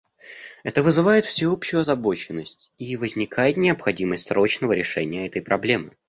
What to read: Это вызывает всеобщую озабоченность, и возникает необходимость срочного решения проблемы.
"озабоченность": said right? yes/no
yes